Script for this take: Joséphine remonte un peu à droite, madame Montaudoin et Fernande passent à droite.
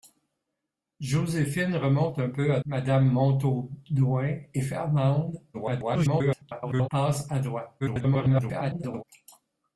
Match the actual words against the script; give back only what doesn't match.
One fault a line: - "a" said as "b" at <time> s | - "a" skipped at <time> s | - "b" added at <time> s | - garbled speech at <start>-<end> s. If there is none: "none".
- "droite" skipped at 2.6 s
- garbled speech at 5.5-6.9 s
- garbled speech at 7.8-9.0 s